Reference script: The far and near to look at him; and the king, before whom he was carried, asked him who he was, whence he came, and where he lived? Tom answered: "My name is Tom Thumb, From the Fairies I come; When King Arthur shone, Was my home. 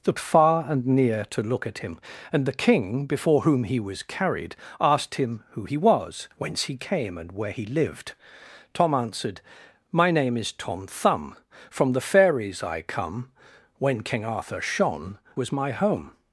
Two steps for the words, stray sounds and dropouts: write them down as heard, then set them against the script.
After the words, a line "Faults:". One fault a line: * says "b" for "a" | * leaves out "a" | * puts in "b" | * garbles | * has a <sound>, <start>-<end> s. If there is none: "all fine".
The far and near to look at him; and the king, before whom he was carried, asked him who he was, whence he came, and where he lived? Tom answered: "My name is Tom Thumb, From the Fairies I come; When King Arthur shone, Was my home.
Faults:
all fine